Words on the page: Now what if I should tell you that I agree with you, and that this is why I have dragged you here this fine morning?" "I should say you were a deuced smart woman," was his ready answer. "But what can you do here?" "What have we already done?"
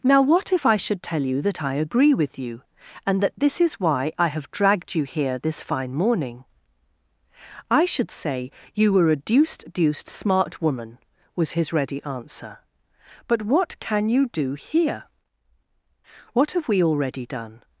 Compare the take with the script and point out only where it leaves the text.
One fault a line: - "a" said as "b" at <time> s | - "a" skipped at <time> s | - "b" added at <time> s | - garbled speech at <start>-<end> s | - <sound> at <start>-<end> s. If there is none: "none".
- "deuced" added at 9.7 s